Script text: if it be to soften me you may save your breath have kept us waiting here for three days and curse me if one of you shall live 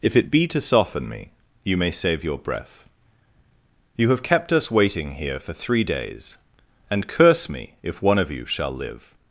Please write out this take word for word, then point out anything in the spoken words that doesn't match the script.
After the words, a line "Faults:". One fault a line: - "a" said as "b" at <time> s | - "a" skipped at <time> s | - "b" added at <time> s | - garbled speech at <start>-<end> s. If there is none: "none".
if it be to soften me you may save your breath you have kept us waiting here for three days and curse me if one of you shall live
Faults:
- "you" added at 4.0 s